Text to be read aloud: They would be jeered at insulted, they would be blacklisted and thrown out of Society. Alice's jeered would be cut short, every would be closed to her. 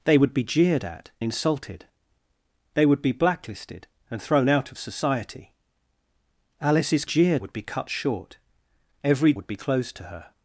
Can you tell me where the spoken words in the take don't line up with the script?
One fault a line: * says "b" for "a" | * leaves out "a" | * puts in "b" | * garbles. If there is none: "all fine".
all fine